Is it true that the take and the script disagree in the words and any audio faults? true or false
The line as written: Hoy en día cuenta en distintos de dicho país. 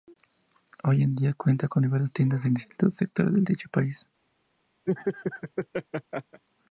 true